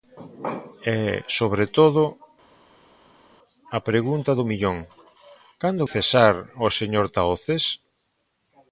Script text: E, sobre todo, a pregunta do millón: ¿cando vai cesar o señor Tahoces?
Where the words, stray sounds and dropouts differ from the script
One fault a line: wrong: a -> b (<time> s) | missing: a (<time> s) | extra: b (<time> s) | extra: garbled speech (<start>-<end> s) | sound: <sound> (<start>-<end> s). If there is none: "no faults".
missing: vai (5.9 s)